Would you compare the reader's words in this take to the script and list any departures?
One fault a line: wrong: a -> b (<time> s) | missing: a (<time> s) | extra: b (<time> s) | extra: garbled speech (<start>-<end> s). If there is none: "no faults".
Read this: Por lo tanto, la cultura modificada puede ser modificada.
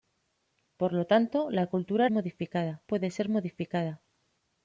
no faults